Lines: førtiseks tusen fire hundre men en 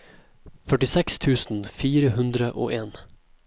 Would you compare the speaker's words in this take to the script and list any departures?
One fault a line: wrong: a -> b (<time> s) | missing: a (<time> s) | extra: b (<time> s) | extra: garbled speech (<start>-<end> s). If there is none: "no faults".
wrong: men -> og (2.5 s)